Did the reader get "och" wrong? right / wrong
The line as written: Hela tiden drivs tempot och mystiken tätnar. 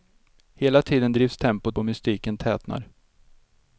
right